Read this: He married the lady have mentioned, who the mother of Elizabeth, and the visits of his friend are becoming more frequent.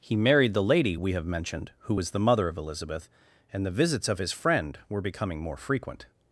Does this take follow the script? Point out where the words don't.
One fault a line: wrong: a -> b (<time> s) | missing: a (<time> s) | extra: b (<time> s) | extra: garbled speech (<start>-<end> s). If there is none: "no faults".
extra: we (1.0 s)
extra: was (1.9 s)
wrong: are -> were (4.9 s)